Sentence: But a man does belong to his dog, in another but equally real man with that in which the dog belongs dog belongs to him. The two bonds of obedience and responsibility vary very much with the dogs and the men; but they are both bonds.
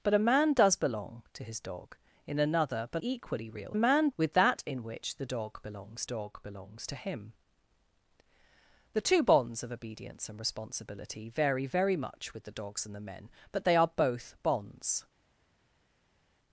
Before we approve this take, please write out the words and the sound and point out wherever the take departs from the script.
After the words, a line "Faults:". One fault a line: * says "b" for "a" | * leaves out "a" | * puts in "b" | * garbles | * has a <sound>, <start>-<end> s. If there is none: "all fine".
But a man does belong to his dog, in another but equally real man with that in which the dog belongs dog belongs to him. The two bonds of obedience and responsibility vary very much with the dogs and the men; but they are both bonds.
Faults:
all fine